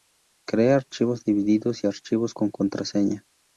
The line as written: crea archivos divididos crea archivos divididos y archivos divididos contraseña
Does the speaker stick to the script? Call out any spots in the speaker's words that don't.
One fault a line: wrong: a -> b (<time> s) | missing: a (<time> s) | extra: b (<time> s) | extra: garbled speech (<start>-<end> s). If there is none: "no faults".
missing: crea archivos divididos (1.9 s)
wrong: divididos -> con (2.3 s)